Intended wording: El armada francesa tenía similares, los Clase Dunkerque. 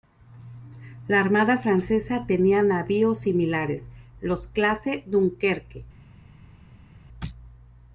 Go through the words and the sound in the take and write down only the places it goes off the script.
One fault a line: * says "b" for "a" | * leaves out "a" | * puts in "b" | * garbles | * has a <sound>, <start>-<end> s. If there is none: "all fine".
* says "La" for "El"
* puts in "navíos"